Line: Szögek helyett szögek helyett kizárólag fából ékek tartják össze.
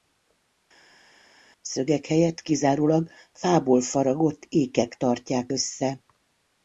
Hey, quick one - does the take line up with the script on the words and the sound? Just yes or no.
no